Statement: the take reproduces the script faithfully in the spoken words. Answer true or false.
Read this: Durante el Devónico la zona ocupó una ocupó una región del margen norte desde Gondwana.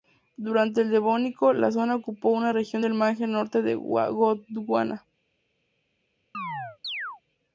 false